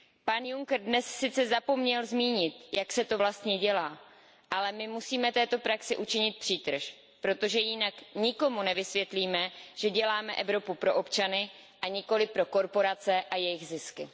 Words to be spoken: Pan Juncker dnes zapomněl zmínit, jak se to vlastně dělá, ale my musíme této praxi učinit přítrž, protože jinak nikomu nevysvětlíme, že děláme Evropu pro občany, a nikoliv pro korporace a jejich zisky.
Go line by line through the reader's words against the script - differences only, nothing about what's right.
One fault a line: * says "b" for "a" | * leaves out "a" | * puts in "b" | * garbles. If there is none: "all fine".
* puts in "sice"